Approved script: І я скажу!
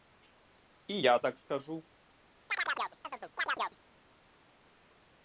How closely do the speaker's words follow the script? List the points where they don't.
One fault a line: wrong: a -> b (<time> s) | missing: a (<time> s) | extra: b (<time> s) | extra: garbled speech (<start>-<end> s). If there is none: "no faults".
extra: так (1.2 s)